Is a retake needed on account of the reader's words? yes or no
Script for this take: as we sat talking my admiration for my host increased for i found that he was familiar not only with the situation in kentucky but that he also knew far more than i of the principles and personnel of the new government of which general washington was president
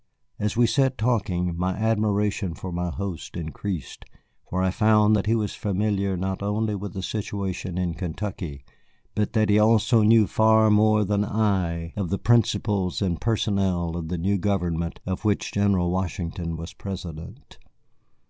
no